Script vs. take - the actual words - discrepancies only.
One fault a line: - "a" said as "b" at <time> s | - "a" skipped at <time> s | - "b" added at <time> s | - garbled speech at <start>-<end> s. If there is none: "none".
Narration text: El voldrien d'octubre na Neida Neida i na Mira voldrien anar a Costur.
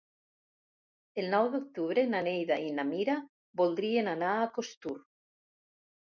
- "voldrien" said as "nou" at 1.3 s
- "Neida" skipped at 2.6 s